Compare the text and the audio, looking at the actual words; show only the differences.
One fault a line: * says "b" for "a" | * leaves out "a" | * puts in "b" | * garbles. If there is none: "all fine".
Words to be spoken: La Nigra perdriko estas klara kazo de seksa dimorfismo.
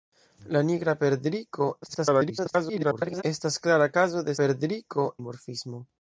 * garbles
* says "perdriko" for "seksa"